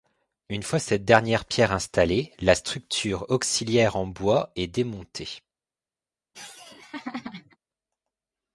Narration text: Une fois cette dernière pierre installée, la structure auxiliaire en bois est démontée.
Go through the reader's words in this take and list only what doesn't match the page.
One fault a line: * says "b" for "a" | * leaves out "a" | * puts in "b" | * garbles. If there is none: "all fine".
all fine